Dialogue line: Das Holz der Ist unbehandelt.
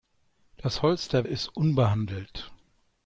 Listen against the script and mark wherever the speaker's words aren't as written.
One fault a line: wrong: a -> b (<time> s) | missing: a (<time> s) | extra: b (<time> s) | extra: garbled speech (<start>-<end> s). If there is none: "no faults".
no faults